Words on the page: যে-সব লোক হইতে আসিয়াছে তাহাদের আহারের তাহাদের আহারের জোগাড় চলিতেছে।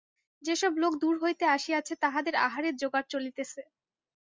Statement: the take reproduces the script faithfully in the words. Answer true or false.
false